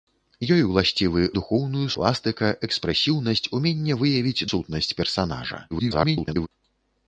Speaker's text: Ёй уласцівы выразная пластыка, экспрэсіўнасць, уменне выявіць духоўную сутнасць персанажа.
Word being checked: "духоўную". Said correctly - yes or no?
no